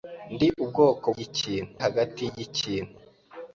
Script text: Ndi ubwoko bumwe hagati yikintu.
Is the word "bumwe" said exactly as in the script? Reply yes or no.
no